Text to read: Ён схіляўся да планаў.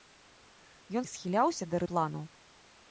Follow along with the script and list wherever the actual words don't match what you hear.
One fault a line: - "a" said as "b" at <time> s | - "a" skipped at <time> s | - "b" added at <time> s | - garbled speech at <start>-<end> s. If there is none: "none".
none